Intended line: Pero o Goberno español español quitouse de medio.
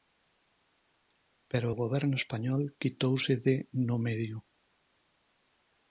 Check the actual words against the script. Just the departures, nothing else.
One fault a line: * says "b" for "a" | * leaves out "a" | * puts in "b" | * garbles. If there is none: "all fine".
* leaves out "español"
* puts in "no"